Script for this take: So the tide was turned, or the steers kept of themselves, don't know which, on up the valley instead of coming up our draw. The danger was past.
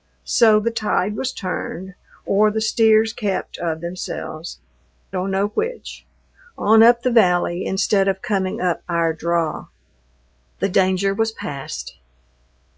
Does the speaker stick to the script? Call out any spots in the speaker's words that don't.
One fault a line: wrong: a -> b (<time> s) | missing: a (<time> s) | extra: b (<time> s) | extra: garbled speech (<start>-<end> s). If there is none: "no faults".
no faults